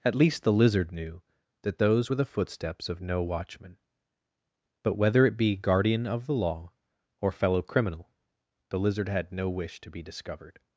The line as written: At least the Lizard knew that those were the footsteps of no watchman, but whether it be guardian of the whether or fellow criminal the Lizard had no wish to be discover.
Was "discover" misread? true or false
true